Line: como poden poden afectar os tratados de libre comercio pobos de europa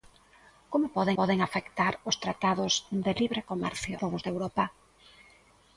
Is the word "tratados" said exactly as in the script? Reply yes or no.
yes